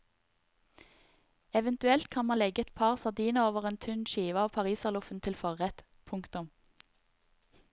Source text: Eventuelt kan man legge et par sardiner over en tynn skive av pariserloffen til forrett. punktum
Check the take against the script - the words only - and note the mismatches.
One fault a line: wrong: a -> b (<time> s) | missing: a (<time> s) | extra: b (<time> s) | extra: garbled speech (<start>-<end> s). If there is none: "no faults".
no faults